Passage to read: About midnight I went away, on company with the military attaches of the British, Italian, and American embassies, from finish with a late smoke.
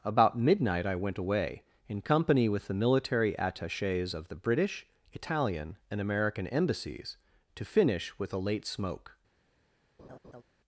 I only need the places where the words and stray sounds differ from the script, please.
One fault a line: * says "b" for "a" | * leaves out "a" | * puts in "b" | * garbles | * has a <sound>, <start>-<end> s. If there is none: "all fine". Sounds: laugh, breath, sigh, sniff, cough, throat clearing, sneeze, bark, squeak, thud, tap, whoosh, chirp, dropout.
* says "in" for "on"
* says "to" for "from"
* has a laugh, 10.0-10.4 s